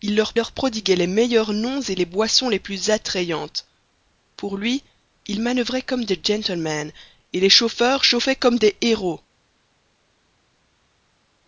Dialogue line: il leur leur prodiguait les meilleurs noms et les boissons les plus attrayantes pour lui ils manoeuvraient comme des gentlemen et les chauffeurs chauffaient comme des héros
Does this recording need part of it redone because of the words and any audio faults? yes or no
no